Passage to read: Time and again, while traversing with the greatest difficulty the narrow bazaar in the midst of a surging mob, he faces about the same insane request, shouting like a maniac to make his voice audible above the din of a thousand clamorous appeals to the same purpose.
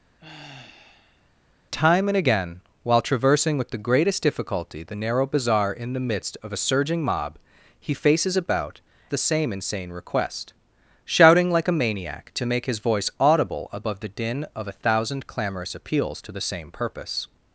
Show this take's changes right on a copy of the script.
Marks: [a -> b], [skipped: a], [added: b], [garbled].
Time and again, while traversing with the greatest difficulty the narrow bazaar in the midst of a surging mob, he faces about the same insane request, shouting like a maniac to make his voice audible above the din of a thousand clamorous appeals to the same purpose.